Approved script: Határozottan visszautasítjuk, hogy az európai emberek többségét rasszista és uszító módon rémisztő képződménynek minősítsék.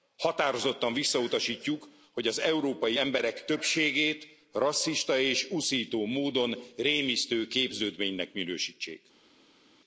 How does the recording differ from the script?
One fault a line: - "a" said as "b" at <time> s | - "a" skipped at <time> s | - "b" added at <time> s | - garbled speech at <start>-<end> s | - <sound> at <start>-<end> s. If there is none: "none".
none